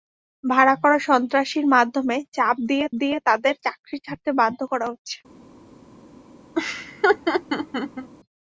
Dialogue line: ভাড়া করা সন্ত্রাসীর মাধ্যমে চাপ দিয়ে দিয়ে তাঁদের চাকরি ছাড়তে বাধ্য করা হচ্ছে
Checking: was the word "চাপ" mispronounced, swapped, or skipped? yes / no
no